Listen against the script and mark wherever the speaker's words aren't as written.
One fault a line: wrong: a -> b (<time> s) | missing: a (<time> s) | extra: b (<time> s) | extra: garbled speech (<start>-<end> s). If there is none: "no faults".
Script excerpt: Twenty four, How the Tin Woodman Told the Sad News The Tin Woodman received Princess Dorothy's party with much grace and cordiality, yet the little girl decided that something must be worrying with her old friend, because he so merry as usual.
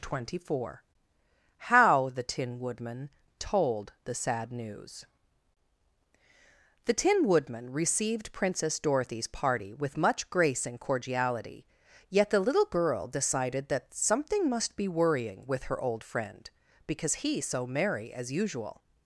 no faults